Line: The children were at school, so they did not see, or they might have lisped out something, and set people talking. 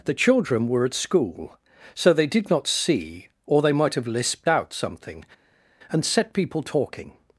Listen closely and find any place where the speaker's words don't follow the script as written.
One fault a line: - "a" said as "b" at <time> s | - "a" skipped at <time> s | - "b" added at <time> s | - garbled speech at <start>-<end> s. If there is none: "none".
none